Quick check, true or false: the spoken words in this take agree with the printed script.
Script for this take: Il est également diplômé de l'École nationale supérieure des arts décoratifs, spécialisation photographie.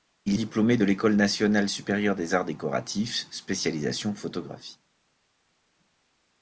false